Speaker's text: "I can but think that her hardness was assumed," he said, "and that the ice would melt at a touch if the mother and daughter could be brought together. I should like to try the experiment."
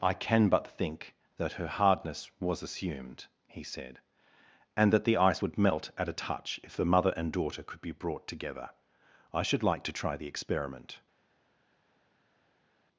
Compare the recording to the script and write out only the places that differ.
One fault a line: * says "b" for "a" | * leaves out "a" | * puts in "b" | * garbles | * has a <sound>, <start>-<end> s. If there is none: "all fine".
all fine